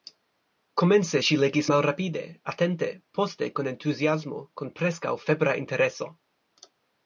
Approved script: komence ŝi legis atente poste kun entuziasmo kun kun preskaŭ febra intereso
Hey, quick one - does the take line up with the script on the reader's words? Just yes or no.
no